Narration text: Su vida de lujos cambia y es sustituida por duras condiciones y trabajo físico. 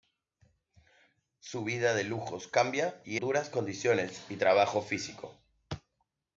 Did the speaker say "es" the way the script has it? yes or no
no